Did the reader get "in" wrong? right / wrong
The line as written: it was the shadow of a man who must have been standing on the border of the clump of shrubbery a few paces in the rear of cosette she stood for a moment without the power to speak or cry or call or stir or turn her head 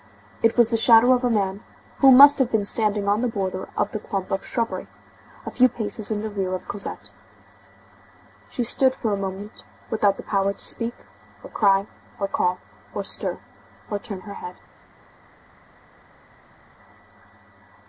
right